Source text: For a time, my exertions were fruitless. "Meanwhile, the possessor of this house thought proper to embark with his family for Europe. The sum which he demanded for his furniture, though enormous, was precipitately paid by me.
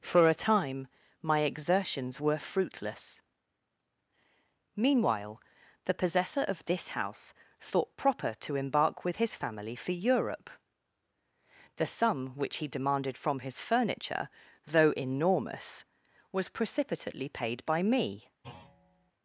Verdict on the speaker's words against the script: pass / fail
fail